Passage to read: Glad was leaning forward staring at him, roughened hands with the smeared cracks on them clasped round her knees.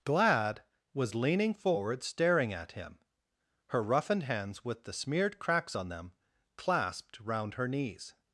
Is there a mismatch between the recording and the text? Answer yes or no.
yes